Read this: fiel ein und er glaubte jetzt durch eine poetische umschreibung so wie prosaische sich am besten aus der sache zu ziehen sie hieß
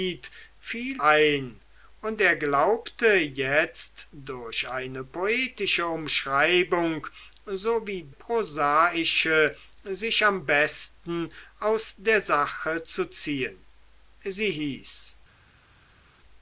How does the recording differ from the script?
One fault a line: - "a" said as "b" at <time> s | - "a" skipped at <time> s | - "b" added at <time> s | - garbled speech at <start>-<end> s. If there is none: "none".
none